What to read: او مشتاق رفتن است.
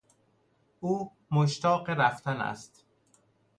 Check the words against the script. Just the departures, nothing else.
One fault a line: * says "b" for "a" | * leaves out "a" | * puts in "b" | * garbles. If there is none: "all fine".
all fine